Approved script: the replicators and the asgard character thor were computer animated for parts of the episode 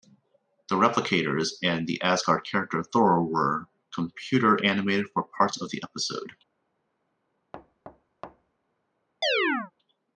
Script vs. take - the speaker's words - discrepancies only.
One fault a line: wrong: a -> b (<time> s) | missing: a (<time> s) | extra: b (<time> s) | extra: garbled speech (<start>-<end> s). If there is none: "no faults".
no faults